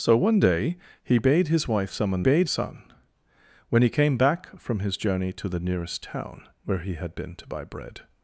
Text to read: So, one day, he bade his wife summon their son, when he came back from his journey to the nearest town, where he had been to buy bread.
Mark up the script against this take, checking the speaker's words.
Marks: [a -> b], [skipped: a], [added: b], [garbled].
So, one day, he bade his wife summon [their -> bade] son, when he came back from his journey to the nearest town, where he had been to buy bread.